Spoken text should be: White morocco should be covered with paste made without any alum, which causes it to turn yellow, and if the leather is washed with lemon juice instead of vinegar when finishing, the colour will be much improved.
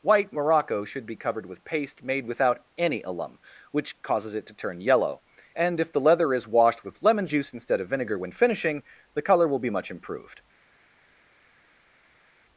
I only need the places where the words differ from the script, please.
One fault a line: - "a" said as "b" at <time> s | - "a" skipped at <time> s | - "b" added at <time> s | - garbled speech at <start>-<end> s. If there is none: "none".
none